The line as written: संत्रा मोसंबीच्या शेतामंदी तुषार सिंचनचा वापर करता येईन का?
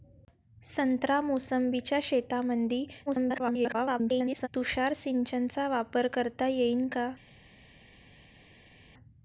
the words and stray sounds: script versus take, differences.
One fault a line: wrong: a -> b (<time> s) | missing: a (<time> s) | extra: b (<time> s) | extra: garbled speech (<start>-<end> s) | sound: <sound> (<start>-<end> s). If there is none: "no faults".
extra: garbled speech (3.1-4.5 s)